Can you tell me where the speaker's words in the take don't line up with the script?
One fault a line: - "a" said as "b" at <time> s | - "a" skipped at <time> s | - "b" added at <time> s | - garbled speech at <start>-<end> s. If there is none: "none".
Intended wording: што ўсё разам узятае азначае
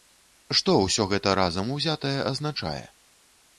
- "гэта" added at 1.1 s